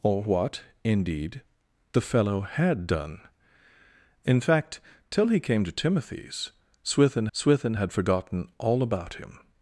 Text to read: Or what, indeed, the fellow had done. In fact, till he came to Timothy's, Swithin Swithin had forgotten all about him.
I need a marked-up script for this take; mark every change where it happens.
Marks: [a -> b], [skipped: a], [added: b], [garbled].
Or what, indeed, the fellow had done. In fact, till he came to Timothy's, Swithin Swithin had forgotten all about him.